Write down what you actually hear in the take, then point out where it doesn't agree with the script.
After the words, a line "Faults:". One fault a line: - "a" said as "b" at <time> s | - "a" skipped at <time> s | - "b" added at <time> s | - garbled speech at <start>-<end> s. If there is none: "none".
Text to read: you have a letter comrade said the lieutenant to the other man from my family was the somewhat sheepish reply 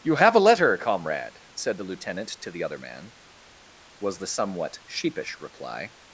you have a letter comrade said the lieutenant to the other man was the somewhat sheepish reply
Faults:
- "from my family" skipped at 3.1 s